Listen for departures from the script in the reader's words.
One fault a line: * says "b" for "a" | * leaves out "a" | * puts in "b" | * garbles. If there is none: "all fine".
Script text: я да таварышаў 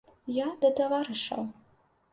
all fine